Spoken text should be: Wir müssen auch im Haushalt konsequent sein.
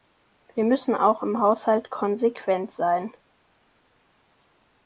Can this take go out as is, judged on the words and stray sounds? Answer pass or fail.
pass